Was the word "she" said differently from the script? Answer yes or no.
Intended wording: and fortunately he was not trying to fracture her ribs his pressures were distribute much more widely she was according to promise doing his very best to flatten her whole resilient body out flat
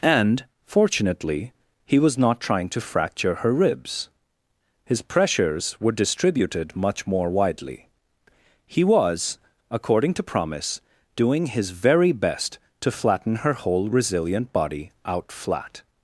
yes